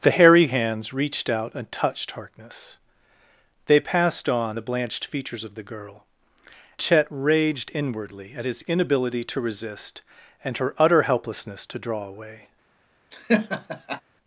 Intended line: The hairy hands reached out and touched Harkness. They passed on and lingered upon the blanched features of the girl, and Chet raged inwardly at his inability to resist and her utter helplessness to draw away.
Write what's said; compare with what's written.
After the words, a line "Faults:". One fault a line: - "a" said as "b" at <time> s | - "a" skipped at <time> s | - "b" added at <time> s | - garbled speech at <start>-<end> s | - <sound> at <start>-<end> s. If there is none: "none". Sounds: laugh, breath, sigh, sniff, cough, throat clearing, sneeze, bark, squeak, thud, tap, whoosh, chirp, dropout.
The hairy hands reached out and touched Harkness. They passed on the blanched features of the girl, Chet raged inwardly at his inability to resist and her utter helplessness to draw away.
Faults:
- "and lingered upon" skipped at 4.6 s
- "and" skipped at 6.0 s
- laugh at 13.1-14.0 s